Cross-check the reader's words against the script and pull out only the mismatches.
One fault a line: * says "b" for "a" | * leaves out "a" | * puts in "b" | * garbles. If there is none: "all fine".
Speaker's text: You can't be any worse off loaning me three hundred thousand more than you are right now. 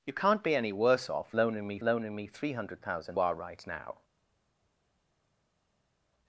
* puts in "loaning me"
* leaves out "more than you"